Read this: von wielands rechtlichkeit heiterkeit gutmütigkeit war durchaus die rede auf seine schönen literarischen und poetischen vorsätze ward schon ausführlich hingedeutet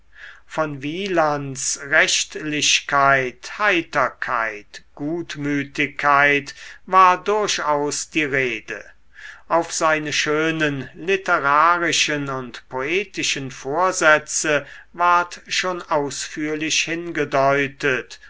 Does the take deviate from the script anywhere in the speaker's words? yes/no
no